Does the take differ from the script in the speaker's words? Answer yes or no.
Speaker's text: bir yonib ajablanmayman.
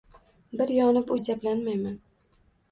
no